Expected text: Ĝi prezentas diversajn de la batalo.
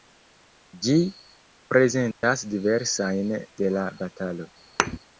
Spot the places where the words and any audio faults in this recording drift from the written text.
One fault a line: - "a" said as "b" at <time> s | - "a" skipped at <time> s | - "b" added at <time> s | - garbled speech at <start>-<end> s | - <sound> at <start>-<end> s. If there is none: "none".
- dropout at 2.1-2.2 s
- thud at 4.8-5.0 s